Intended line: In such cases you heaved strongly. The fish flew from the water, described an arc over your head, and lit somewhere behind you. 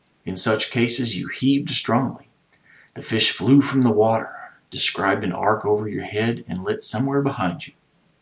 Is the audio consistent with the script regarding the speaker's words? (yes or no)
yes